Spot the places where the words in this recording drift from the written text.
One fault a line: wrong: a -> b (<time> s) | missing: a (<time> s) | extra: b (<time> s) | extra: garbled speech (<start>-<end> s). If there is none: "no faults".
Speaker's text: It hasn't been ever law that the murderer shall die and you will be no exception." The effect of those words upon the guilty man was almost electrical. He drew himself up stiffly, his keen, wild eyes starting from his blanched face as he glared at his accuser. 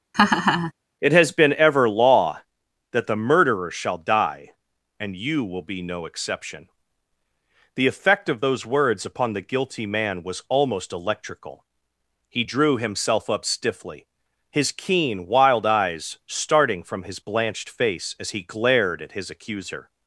wrong: hasn't -> has (1.1 s)